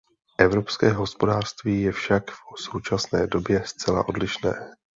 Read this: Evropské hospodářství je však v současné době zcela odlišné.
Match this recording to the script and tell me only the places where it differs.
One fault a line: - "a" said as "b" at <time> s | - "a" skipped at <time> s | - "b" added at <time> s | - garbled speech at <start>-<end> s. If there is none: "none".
none